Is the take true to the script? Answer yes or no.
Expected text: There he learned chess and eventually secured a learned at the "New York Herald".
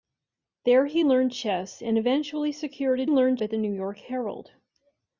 yes